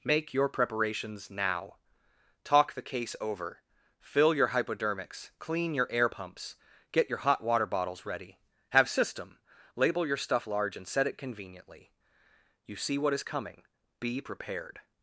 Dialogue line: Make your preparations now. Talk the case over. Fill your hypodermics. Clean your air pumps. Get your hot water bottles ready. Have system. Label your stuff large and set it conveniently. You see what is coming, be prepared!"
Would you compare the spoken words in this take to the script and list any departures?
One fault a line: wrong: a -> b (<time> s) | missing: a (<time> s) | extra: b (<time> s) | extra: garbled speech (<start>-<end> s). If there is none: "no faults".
no faults